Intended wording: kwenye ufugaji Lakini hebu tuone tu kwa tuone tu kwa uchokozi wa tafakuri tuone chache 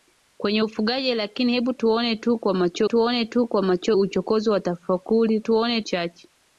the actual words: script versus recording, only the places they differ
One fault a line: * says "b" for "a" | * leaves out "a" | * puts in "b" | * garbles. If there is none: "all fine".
all fine